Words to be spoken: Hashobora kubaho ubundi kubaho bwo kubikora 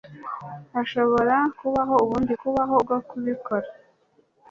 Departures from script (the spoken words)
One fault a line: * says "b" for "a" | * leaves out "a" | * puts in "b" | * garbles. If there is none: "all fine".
all fine